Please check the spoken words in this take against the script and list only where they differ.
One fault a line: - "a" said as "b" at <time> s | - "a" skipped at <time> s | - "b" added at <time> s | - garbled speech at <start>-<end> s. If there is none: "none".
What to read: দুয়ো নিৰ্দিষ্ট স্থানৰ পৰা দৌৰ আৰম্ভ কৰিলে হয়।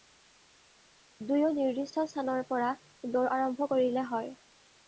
none